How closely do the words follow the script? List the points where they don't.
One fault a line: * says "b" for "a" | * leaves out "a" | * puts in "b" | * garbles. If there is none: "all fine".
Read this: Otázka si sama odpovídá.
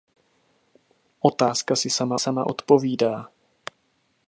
* puts in "sama"